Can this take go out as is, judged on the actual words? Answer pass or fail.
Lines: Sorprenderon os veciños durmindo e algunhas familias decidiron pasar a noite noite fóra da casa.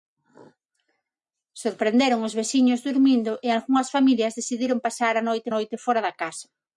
pass